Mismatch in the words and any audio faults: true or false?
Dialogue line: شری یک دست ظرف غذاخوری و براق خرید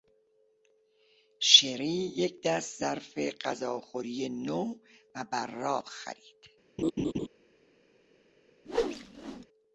true